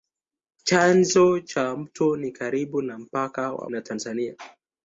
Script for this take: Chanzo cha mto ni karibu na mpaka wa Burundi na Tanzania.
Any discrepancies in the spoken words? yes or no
yes